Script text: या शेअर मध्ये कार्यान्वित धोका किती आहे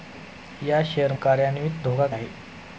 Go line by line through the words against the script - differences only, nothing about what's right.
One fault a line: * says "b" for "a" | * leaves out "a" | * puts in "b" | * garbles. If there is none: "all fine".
* leaves out "मध्ये"
* leaves out "किती"